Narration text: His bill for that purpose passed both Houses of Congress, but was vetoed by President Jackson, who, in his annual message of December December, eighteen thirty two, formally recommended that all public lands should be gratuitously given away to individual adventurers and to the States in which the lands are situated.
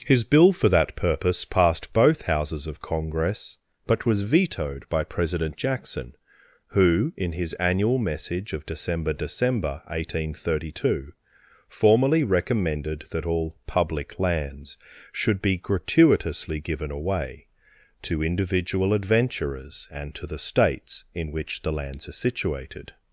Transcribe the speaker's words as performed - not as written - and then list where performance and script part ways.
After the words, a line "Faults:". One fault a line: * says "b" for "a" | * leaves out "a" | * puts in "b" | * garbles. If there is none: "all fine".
His bill for that purpose passed both Houses of Congress, but was vetoed by President Jackson, who, in his annual message of December December, eighteen thirty two, formally recommended that all public lands should be gratuitously given away to individual adventurers and to the States in which the lands are situated.
Faults:
all fine